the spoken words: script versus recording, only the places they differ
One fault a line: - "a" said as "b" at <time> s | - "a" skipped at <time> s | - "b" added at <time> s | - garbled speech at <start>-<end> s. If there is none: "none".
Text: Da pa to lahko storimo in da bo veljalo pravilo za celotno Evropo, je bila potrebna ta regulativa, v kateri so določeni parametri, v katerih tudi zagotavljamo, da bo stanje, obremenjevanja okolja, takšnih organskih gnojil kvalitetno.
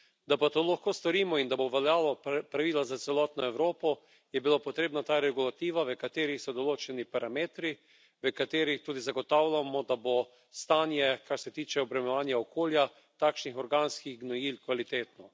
- "kar se tiče" added at 11.3 s